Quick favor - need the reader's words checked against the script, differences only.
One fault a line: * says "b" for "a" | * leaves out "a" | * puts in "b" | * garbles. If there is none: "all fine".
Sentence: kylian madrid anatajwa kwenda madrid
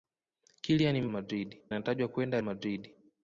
all fine